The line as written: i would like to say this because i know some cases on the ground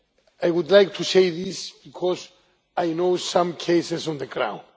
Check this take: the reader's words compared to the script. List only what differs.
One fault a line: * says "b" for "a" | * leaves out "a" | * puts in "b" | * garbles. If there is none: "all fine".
all fine